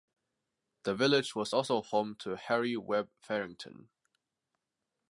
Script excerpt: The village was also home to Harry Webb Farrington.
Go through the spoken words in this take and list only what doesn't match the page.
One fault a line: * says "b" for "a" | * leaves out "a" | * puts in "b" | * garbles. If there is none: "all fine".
all fine